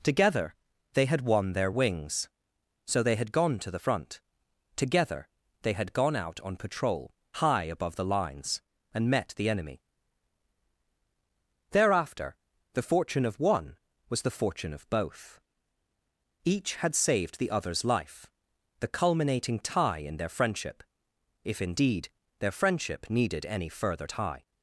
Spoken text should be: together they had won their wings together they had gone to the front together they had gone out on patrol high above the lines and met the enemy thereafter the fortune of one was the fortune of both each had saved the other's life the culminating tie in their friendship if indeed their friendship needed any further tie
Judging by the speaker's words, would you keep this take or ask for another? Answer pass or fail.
fail